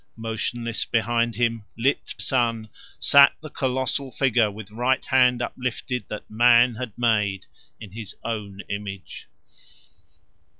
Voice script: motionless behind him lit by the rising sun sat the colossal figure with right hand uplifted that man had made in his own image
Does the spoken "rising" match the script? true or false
false